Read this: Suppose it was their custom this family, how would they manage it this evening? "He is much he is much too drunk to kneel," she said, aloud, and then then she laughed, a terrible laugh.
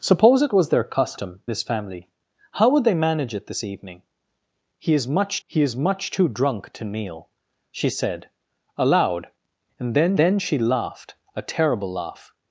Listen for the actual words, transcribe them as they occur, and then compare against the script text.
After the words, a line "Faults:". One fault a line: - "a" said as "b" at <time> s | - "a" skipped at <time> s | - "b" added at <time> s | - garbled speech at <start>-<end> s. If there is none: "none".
Suppose it was their custom this family, how would they manage it this evening? "He is much he is much too drunk to kneel," she said, aloud, and then then she laughed, a terrible laugh.
Faults:
none